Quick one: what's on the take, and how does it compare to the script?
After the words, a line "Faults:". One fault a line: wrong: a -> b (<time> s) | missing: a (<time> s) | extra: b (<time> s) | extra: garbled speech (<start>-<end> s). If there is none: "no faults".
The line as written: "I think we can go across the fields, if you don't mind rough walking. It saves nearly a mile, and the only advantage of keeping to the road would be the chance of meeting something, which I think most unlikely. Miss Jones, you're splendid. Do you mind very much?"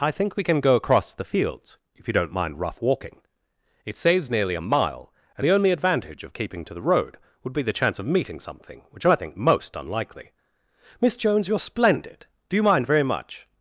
"I think we can go across the fields, if you don't mind rough walking. It saves nearly a mile, and the only advantage of keeping to the road would be the chance of meeting something, which I think most unlikely. Miss Jones, you're splendid. Do you mind very much?"
Faults:
no faults